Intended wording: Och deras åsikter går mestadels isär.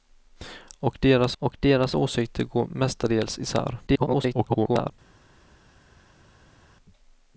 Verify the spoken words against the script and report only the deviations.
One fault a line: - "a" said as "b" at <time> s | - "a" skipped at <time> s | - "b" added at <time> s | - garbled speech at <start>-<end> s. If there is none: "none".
- "och deras" added at 1.4 s
- garbled speech at 3.9-4.9 s